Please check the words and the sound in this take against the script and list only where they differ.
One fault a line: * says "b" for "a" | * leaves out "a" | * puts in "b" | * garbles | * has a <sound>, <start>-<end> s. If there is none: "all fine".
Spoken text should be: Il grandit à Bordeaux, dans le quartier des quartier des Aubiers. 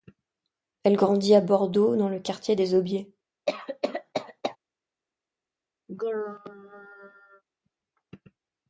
* says "Elle" for "Il"
* leaves out "quartier des"
* has a cough, 3.5-4.6 s
* has a throat clearing, 5.9-7.4 s